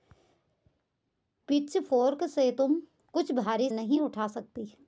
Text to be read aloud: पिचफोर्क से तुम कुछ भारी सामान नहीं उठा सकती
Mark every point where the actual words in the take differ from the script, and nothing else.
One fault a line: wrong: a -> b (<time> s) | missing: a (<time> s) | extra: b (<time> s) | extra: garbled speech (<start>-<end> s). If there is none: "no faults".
missing: सामान (3.7 s)